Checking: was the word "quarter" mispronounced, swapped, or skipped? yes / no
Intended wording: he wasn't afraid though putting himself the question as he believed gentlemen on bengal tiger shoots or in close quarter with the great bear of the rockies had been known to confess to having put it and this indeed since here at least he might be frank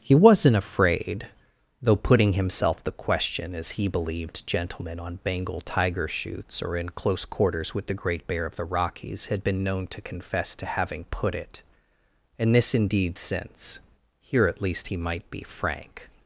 yes